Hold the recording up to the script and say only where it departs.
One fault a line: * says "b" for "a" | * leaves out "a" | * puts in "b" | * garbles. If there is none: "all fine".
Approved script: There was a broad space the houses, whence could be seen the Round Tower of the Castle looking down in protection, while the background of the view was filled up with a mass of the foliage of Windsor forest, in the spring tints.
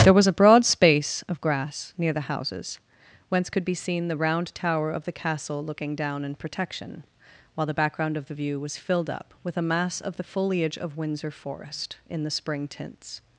* puts in "of grass near"